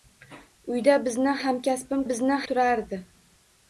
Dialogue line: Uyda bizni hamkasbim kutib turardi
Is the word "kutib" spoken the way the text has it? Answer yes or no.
no